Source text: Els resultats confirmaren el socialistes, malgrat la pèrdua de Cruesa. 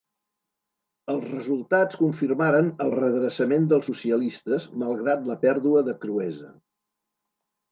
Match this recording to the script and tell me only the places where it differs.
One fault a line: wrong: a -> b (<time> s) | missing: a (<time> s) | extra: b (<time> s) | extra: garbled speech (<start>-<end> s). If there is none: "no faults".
extra: redreçament dels (2.9 s)